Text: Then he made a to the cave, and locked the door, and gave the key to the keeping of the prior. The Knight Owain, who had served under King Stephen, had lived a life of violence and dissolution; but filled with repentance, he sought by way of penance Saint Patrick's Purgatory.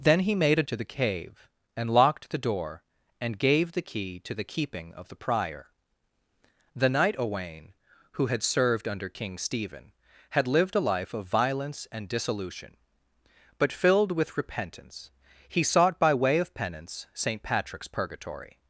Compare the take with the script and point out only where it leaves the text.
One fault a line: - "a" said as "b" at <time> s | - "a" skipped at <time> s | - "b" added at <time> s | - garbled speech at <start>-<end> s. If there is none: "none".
none